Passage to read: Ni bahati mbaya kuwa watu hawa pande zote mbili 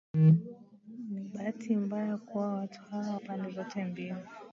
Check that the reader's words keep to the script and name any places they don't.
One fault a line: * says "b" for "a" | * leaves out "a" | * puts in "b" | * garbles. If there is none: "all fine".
all fine